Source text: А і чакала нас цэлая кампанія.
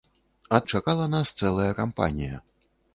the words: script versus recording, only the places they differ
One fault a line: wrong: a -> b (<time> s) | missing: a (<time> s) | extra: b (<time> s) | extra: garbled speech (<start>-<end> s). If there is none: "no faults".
no faults